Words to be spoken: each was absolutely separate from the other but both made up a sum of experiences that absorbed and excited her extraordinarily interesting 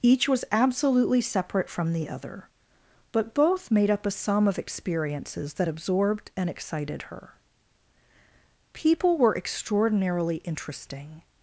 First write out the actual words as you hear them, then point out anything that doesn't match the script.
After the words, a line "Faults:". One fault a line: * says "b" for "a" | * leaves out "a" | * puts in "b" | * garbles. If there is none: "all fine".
each was absolutely separate from the other but both made up a sum of experiences that absorbed and excited her people were extraordinarily interesting
Faults:
* puts in "people were"